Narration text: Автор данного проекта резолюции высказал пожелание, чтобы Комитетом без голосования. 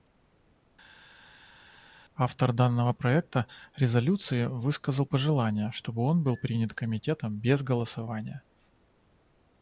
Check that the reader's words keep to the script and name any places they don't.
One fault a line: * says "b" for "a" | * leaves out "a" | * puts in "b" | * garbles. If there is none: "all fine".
* puts in "он был принят"